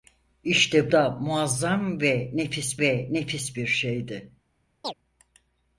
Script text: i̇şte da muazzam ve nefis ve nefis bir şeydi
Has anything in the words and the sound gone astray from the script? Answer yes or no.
yes